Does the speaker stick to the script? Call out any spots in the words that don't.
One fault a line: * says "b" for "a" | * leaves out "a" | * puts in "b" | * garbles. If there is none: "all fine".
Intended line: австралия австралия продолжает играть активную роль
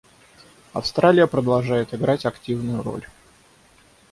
* leaves out "австралия"